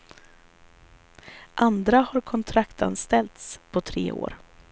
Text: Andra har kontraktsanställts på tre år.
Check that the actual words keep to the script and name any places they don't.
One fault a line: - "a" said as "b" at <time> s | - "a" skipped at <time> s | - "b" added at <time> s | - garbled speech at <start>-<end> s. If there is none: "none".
none